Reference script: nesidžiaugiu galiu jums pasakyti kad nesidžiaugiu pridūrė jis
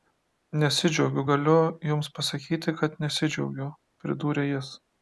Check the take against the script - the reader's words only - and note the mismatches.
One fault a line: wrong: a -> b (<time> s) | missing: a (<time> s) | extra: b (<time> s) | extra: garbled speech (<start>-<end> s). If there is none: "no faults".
no faults